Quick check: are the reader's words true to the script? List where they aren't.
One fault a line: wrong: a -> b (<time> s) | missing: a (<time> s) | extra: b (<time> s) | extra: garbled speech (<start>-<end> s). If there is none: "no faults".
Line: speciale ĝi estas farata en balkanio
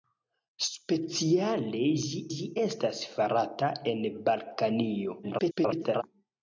extra: ĝi (2.3 s)
extra: garbled speech (5.2-6.0 s)